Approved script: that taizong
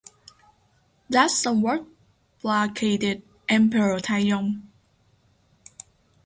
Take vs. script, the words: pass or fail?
fail